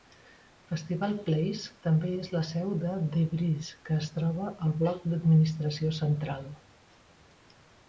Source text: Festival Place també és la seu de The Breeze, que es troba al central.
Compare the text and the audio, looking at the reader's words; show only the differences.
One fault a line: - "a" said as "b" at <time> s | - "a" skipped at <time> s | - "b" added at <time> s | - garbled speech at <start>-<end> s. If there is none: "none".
- "bloc d'administració" added at 4.8 s